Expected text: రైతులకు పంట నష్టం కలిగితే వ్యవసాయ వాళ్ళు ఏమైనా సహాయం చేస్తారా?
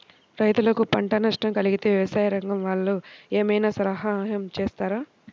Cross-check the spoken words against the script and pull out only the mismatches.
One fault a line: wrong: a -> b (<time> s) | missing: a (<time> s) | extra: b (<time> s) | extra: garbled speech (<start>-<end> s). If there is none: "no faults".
extra: రంగం (2.3 s)